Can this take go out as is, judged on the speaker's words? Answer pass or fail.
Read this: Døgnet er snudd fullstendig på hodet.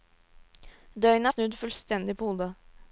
pass